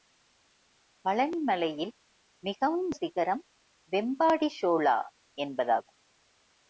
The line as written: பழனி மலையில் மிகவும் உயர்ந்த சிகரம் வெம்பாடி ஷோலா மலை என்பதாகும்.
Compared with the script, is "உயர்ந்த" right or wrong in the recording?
wrong